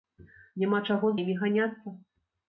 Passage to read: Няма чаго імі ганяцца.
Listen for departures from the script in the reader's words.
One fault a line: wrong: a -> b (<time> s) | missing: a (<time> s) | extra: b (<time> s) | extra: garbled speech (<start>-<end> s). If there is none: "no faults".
no faults